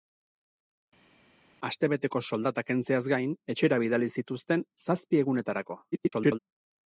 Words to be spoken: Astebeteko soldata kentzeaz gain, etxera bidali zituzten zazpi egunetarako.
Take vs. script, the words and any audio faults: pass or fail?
fail